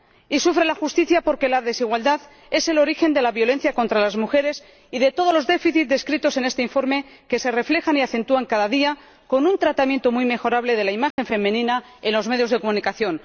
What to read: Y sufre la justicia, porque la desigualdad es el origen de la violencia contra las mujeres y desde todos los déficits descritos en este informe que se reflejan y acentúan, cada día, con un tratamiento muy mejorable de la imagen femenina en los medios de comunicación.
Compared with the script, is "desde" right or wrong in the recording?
wrong